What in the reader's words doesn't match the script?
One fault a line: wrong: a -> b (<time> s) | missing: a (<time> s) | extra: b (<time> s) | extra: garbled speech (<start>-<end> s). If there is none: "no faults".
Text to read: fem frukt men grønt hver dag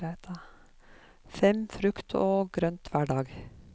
wrong: men -> og (2.2 s)